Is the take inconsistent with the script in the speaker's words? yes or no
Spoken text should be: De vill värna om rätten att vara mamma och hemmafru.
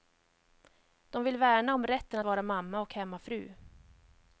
yes